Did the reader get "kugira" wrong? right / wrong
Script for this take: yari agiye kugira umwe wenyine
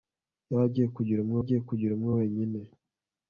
right